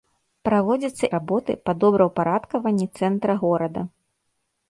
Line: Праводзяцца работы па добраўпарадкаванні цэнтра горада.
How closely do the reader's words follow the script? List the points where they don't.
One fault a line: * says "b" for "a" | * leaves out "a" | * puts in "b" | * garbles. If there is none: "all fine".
all fine